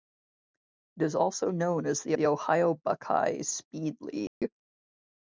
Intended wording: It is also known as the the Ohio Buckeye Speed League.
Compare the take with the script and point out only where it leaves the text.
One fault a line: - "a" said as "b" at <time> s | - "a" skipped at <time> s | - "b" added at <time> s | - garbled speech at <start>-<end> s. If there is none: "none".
none